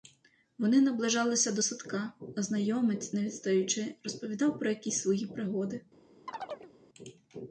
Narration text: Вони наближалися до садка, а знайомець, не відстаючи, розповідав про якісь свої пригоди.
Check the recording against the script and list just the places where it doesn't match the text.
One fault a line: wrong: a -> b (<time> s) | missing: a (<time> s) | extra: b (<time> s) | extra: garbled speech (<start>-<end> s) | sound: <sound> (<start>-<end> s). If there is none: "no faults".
sound: chirp (6.3-6.7 s)